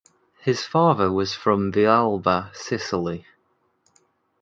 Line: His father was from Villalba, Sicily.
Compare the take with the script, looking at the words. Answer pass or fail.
pass